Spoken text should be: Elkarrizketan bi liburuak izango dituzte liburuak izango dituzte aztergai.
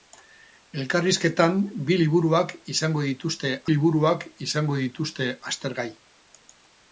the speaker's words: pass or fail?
pass